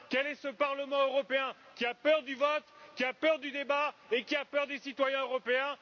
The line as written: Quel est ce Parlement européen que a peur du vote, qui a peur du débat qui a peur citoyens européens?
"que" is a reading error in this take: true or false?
true